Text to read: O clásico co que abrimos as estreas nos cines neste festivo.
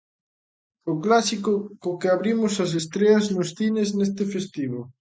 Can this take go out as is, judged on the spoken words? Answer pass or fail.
pass